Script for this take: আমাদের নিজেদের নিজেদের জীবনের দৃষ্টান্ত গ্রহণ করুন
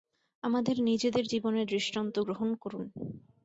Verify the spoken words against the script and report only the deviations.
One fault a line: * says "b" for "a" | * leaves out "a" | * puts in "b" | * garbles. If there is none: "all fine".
* leaves out "নিজেদের"